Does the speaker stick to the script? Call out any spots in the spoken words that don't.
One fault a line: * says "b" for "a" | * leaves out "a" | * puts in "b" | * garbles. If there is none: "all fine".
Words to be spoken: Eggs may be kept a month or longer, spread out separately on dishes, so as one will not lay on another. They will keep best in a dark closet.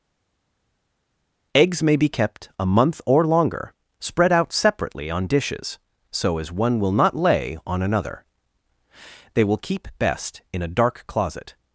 all fine